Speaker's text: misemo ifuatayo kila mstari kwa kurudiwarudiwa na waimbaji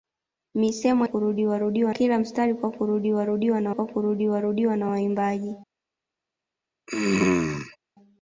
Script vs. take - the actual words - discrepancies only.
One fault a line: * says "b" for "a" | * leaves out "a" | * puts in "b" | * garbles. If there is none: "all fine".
* says "kurudiwarudiwa" for "ifuatayo"
* puts in "kwa kurudiwarudiwa na"